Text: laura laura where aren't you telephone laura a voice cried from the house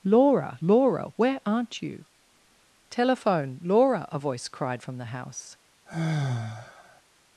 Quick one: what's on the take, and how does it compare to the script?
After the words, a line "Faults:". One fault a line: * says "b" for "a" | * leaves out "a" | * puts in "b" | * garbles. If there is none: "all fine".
laura laura where aren't you telephone laura a voice cried from the house
Faults:
all fine